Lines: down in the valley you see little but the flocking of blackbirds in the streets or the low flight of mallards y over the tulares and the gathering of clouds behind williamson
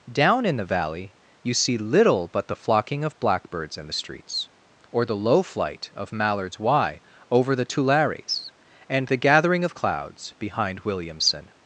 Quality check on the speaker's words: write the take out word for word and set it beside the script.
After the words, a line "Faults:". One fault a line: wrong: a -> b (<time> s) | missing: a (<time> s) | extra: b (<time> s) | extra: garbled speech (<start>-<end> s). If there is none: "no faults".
down in the valley you see little but the flocking of blackbirds in the streets or the low flight of mallards y over the tulares and the gathering of clouds behind williamson
Faults:
no faults